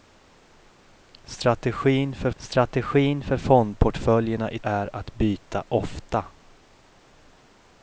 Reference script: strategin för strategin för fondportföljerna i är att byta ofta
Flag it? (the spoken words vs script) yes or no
no